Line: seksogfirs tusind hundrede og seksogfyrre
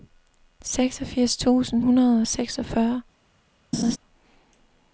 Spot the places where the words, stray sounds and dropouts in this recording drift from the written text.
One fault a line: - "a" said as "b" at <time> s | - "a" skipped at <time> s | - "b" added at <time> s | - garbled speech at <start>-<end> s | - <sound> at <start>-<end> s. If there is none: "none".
- laugh at 3.7-4.0 s